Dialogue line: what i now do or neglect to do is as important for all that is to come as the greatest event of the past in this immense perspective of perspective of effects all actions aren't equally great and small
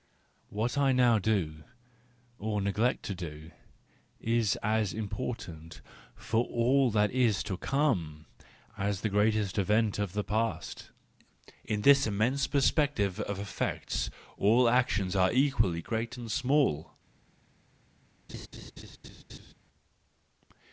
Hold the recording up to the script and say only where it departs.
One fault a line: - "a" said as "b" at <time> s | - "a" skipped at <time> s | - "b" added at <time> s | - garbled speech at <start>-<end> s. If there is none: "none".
- "perspective of" skipped at 13.4 s
- "aren't" said as "are" at 15.2 s